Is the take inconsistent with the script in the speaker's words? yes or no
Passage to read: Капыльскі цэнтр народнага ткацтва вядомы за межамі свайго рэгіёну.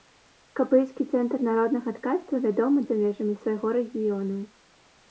no